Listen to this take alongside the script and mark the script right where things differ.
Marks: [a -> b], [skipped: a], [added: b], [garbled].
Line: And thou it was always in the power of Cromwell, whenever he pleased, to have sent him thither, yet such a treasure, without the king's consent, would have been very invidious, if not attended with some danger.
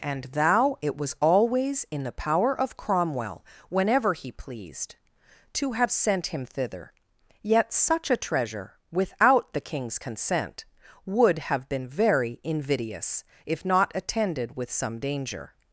And thou it was always in the power of Cromwell, whenever he pleased, to have sent him thither, yet such a treasure, without the king's consent, would have been very invidious, if not attended with some danger.